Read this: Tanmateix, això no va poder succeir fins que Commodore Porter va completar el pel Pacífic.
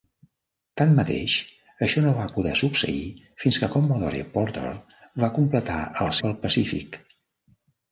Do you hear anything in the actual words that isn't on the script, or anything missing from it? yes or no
no